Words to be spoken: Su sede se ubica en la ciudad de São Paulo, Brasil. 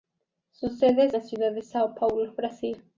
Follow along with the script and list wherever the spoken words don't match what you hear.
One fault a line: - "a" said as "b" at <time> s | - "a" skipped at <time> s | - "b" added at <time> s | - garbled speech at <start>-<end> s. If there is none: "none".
- "se ubica en" skipped at 1.1 s